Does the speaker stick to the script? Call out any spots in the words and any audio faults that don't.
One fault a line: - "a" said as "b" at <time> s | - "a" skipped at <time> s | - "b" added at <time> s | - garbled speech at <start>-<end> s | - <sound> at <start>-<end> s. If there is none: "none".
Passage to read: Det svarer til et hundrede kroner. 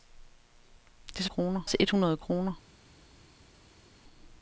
- "svarer" said as "kroner" at 1.2 s